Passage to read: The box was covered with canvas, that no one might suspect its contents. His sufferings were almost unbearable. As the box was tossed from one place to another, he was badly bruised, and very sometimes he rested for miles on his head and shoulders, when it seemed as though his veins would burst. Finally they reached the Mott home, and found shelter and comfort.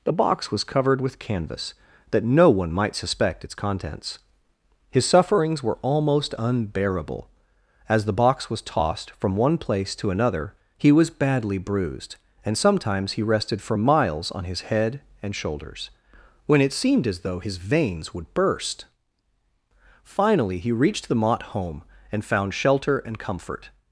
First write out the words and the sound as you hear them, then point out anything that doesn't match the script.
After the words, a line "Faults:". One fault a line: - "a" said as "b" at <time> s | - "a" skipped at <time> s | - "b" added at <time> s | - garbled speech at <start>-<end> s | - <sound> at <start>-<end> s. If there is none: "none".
The box was covered with canvas, that no one might suspect its contents. His sufferings were almost unbearable. As the box was tossed from one place to another, he was badly bruised, and sometimes he rested for miles on his head and shoulders, when it seemed as though his veins would burst. Finally he reached the Mott home, and found shelter and comfort.
Faults:
- "very" skipped at 12.6 s
- "they" said as "he" at 20.6 s